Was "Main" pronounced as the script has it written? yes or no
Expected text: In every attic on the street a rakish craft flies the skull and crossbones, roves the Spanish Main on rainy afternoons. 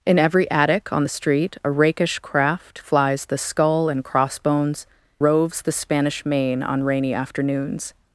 yes